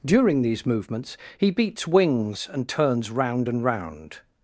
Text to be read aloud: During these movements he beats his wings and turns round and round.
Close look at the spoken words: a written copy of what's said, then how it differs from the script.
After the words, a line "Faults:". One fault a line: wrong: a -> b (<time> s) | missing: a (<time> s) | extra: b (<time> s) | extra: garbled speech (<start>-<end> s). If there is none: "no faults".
During these movements he beats wings and turns round and round.
Faults:
missing: his (1.9 s)